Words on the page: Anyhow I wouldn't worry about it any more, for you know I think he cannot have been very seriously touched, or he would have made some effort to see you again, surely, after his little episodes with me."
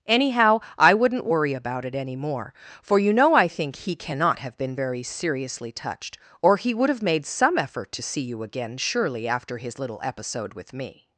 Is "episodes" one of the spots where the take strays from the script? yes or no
yes